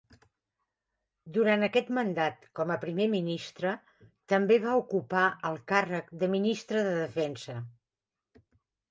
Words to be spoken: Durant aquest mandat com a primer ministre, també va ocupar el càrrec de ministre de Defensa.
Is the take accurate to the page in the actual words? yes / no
yes